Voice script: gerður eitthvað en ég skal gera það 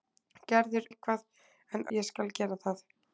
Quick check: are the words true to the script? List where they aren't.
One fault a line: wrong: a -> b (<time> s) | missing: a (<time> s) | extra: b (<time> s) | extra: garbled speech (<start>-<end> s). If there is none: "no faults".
no faults